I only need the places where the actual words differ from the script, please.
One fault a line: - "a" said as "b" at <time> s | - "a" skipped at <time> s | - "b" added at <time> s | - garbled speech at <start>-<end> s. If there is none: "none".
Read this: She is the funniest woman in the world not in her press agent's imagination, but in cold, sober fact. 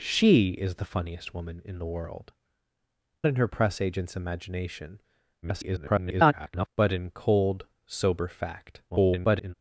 - "not" skipped at 2.3 s
- garbled speech at 5.4-6.7 s
- garbled speech at 8.9-9.5 s